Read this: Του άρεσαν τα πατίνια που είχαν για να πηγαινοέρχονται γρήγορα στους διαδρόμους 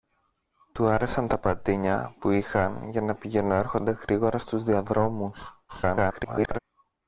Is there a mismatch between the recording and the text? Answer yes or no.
yes